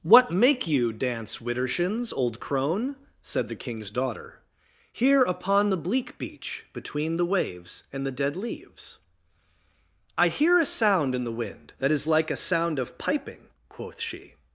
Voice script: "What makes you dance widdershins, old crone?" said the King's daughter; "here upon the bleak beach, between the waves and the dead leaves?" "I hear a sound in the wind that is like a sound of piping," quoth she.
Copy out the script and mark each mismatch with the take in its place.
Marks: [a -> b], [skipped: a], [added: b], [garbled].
"What [makes -> make] you dance widdershins, old crone?" said the King's daughter; "here upon the bleak beach, between the waves and the dead leaves?" "I hear a sound in the wind that is like a sound of piping," quoth she.